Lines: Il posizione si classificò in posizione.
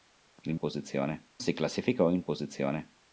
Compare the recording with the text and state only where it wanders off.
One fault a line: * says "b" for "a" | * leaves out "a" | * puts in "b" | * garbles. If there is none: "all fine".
all fine